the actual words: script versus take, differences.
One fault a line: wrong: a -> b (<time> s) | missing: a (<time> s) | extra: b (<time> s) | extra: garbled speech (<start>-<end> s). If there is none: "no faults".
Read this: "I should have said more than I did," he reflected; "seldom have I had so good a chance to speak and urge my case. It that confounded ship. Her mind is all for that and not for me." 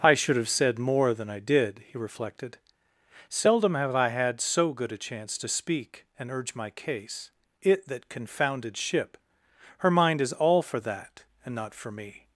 no faults